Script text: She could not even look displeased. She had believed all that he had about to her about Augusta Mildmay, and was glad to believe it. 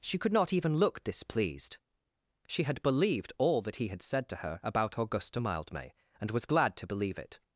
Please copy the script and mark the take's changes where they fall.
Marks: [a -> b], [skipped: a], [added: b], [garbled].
She could not even look displeased. She had believed all that he had [about -> said] to her about Augusta Mildmay, and was glad to believe it.